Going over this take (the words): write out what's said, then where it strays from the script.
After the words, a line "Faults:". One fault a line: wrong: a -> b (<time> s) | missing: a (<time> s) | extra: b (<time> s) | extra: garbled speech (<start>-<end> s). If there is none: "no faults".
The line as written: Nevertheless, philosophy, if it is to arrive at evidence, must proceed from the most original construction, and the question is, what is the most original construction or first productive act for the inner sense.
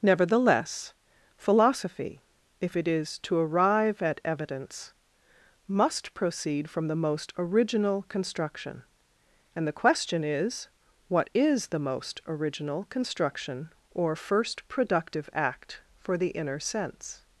Nevertheless, philosophy, if it is to arrive at evidence, must proceed from the most original construction, and the question is, what is the most original construction or first productive act for the inner sense.
Faults:
no faults